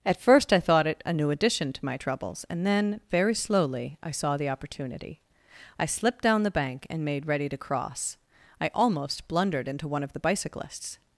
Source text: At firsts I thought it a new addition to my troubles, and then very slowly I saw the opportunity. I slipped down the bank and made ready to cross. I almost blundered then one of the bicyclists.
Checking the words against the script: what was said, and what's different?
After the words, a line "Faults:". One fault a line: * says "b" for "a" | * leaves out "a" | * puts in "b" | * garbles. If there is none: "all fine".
At first I thought it a new addition to my troubles, and then very slowly I saw the opportunity. I slipped down the bank and made ready to cross. I almost blundered into one of the bicyclists.
Faults:
* says "first" for "firsts"
* says "into" for "then"